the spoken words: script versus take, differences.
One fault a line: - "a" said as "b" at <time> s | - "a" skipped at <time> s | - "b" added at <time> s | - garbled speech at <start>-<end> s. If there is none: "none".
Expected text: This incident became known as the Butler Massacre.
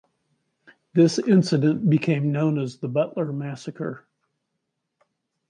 none